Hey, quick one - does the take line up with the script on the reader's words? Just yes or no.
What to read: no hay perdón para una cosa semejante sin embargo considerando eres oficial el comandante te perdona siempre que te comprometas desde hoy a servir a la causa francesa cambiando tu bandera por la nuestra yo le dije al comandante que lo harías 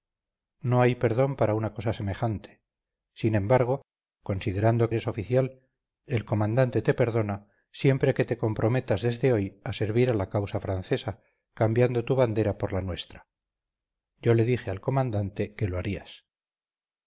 yes